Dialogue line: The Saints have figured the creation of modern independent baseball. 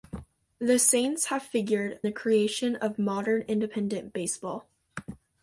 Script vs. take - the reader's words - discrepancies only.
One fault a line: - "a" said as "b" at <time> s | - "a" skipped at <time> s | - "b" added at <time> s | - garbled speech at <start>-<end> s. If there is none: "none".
none